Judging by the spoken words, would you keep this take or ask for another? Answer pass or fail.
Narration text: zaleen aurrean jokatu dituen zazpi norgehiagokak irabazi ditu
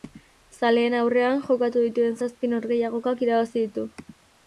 pass